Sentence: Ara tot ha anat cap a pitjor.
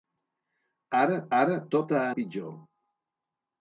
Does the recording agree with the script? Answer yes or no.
no